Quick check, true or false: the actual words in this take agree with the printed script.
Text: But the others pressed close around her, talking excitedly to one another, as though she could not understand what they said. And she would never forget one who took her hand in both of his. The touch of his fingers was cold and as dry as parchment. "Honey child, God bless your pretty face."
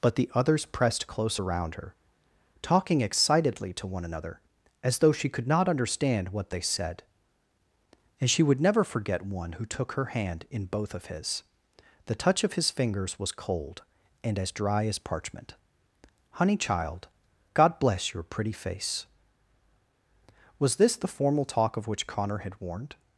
false